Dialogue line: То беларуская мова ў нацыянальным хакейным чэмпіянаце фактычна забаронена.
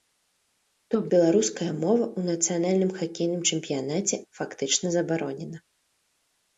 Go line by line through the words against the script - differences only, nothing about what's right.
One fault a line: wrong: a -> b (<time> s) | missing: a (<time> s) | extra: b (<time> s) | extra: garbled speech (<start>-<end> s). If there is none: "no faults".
no faults